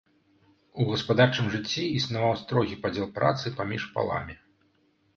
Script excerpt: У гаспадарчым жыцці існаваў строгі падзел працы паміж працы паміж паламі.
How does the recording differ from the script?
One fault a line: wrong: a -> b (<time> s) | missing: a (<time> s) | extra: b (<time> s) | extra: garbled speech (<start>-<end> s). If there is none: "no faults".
missing: працы паміж (3.9 s)